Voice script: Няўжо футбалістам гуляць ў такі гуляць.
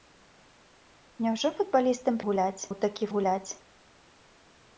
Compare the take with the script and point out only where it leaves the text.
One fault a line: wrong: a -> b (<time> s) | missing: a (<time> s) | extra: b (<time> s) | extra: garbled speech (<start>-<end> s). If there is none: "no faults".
no faults